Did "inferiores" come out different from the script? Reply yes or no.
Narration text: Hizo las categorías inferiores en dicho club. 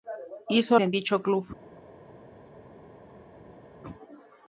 yes